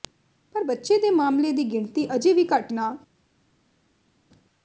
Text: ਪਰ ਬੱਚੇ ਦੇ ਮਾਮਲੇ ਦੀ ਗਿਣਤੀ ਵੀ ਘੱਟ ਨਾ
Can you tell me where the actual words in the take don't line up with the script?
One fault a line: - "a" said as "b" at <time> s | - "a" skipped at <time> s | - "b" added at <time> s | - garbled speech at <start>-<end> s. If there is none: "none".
- "ਅਜੇ" added at 2.2 s